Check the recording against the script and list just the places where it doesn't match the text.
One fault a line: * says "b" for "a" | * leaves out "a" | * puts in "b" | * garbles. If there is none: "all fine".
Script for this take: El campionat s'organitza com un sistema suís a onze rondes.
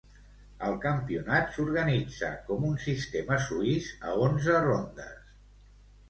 all fine